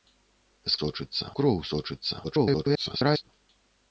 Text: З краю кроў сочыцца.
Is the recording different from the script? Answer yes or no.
yes